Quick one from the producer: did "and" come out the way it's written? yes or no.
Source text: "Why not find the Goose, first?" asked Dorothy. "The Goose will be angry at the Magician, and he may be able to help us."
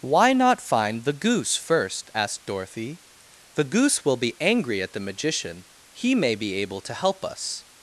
no